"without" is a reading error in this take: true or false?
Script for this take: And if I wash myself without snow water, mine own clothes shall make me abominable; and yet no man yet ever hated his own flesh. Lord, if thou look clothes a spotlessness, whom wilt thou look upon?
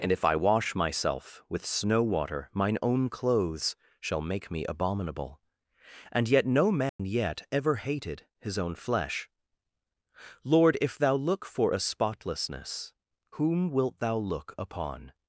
true